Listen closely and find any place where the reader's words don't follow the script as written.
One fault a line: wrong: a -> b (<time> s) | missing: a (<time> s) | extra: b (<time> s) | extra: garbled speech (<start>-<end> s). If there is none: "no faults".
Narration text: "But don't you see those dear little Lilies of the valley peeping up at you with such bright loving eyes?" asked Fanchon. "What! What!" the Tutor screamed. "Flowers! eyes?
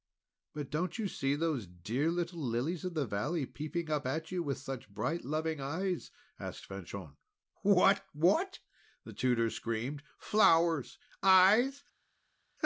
no faults